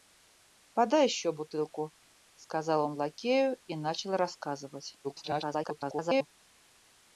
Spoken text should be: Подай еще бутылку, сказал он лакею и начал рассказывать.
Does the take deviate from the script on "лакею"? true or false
false